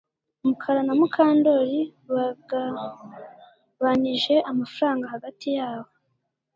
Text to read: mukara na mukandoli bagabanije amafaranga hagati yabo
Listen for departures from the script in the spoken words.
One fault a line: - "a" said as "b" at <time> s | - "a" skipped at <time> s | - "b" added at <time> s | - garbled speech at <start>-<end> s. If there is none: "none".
none